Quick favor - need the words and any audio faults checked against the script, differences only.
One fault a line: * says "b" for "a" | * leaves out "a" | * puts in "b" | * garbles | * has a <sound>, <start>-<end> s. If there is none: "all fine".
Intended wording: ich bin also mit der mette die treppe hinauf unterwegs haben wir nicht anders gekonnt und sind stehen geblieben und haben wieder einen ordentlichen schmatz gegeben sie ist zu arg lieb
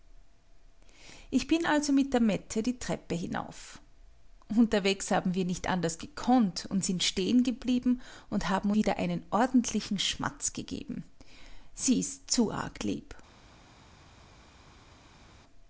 all fine